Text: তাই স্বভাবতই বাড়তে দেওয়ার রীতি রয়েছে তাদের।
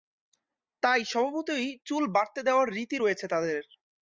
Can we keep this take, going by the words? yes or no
no